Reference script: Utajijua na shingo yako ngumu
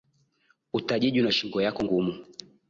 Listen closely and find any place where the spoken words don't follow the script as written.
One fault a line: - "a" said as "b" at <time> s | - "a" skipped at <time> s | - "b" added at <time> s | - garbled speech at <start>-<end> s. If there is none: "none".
none